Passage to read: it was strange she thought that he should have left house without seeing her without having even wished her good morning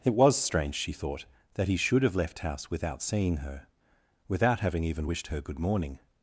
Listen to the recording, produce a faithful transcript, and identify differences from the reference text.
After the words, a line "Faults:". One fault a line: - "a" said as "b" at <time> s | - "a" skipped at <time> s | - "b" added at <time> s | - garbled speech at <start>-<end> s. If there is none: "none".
it was strange she thought that he should have left house without seeing her without having even wished her good morning
Faults:
none